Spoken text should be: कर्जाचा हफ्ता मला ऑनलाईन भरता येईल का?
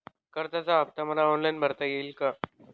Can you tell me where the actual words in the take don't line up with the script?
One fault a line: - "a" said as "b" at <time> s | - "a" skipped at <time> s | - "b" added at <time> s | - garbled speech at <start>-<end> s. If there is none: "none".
none